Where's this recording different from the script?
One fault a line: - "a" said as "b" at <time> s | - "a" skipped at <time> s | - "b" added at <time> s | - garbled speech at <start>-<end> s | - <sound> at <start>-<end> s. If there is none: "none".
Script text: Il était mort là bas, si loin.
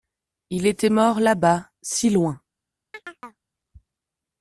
- chirp at 2.9-3.4 s